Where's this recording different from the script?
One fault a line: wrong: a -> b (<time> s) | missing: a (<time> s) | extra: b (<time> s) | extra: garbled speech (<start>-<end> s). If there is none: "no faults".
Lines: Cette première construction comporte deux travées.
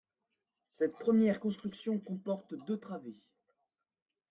no faults